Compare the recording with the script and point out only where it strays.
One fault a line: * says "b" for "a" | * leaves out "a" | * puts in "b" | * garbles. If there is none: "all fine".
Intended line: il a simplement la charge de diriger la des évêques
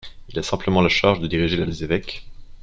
all fine